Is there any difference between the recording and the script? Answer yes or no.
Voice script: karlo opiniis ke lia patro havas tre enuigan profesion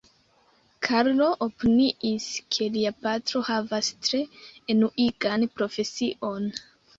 no